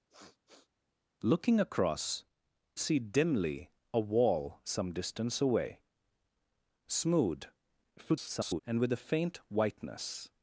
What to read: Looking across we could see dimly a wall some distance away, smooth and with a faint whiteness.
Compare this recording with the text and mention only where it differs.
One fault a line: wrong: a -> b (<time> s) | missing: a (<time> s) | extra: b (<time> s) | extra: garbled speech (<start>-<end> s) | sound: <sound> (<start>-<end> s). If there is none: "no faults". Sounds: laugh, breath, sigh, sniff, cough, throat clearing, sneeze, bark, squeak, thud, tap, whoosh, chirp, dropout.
sound: sniff (0.1-0.7 s)
missing: we could (2.2 s)
extra: garbled speech (8.0-8.6 s)